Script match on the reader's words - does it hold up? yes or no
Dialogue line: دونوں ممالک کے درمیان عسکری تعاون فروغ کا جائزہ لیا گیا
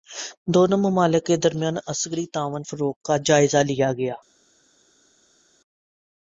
yes